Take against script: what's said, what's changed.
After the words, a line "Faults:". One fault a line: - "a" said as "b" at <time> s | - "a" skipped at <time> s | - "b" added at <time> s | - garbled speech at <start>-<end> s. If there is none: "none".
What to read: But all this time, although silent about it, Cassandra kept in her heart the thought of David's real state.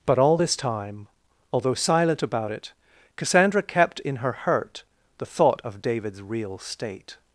But all this time, although silent about it, Cassandra kept in her hurt the thought of David's real state.
Faults:
- "heart" said as "hurt" at 4.3 s